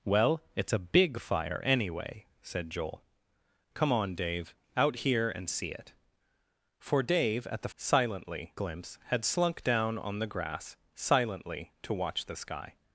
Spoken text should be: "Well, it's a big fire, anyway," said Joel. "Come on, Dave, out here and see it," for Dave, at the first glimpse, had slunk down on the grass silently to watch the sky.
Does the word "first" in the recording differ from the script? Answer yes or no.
yes